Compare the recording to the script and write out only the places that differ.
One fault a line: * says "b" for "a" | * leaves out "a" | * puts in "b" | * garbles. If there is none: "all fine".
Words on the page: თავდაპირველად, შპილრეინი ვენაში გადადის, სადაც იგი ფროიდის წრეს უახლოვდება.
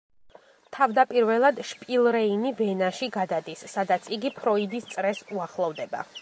all fine